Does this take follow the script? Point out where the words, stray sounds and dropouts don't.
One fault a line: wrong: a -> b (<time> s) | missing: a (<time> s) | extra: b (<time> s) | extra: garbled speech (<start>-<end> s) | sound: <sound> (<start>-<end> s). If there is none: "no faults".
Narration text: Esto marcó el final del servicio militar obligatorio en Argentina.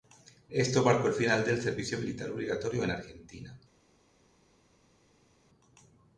no faults